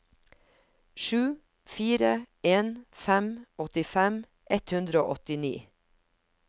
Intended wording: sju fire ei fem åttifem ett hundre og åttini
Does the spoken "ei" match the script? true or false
false